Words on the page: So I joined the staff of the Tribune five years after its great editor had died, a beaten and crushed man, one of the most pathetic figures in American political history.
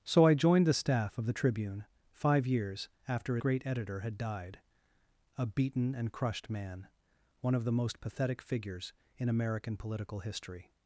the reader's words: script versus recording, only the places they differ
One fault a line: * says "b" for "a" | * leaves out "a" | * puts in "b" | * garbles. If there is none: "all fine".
* leaves out "its"